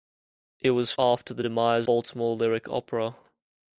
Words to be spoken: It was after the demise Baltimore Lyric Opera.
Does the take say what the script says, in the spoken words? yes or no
yes